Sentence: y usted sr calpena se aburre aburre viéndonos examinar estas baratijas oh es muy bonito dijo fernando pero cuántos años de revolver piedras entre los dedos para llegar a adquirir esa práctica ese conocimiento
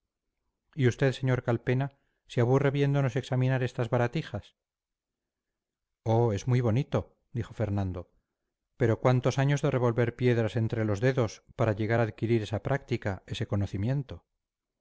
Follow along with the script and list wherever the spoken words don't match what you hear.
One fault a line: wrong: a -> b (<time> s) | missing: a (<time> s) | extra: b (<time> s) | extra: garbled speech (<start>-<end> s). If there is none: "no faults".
missing: aburre (2.7 s)